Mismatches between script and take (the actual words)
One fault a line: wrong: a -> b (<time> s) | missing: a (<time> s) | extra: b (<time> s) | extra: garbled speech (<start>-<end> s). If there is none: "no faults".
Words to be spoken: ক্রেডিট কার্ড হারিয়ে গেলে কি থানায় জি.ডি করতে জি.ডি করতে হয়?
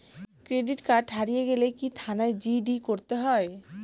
missing: জি.ডি করতে (3.1 s)